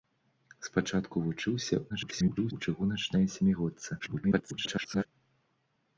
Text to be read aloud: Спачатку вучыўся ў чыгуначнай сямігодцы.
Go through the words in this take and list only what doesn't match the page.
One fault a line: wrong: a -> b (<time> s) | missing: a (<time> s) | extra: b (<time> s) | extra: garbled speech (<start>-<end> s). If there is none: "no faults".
extra: garbled speech (1.9-2.5 s)
extra: garbled speech (4.0-5.1 s)